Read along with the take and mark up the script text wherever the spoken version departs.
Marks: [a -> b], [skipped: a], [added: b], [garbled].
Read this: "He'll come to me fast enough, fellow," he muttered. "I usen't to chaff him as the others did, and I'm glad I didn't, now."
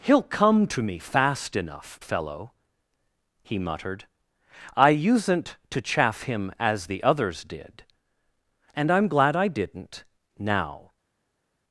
"He'll come to me fast enough, fellow," he muttered. "I usen't to chaff him as the others did, and I'm glad I didn't, now."